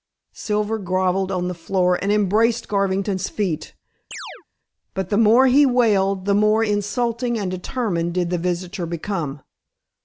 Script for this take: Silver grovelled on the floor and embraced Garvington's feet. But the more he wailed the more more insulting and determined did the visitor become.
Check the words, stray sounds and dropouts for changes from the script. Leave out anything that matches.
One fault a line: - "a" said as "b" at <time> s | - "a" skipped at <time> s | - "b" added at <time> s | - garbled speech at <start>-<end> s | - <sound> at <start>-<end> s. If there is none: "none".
- chirp at 4.1-4.4 s
- "more" skipped at 6.6 s